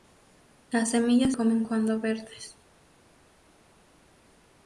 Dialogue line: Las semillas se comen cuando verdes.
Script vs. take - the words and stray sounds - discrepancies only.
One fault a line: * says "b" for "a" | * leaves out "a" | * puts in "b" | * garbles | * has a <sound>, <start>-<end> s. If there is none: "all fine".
* leaves out "se"